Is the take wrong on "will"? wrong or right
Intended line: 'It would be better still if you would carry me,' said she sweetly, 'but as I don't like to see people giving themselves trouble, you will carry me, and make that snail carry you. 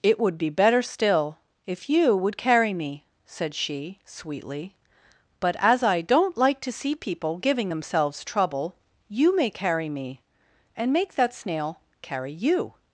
wrong